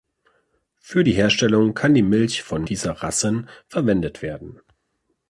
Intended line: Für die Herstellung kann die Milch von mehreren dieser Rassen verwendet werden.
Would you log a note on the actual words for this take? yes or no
yes